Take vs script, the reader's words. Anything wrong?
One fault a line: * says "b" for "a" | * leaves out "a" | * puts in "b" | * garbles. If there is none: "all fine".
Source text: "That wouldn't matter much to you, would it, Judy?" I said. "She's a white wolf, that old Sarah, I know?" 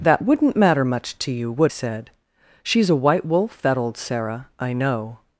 * leaves out "it Judy I"